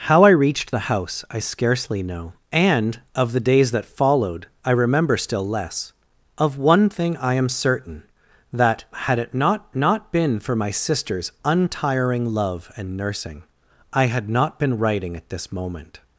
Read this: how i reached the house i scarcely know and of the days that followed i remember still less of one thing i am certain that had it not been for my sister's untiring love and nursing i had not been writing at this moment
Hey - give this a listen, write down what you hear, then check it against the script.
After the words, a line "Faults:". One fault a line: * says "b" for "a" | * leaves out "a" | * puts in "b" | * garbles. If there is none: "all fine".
how i reached the house i scarcely know and of the days that followed i remember still less of one thing i am certain that had it not not been for my sister's untiring love and nursing i had not been writing at this moment
Faults:
* puts in "not"